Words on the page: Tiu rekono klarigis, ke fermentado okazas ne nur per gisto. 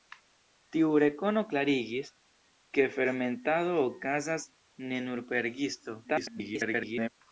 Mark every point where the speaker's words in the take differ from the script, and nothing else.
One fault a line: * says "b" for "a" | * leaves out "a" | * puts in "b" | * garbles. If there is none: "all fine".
* garbles